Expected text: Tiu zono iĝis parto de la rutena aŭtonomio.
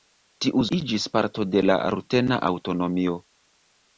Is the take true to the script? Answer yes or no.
no